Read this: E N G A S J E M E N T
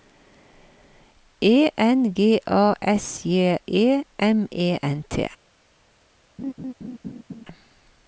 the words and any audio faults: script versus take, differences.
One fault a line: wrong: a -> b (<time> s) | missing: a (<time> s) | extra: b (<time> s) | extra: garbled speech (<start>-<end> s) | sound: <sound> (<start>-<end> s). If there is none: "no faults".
sound: laugh (6.4-7.5 s)